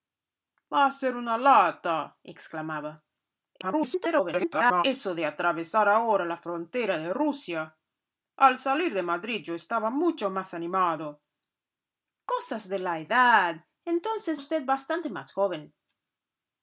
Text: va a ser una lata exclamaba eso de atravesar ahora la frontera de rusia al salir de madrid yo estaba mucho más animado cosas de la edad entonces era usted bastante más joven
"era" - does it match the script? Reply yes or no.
no